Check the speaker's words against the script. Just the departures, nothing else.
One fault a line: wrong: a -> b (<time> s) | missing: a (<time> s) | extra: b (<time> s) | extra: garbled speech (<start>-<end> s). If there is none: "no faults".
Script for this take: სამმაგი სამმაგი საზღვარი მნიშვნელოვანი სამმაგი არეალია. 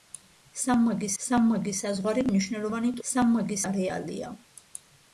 no faults